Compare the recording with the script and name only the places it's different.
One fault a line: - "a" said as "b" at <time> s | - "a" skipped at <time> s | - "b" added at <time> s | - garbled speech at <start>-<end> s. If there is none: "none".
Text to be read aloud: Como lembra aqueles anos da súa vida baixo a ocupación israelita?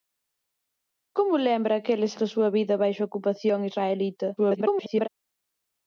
- "anos" skipped at 2.1 s
- garbled speech at 4.4-5.1 s